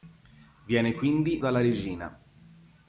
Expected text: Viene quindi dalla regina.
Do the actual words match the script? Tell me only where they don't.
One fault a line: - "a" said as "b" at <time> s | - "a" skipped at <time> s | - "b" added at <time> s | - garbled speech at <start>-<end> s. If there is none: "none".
none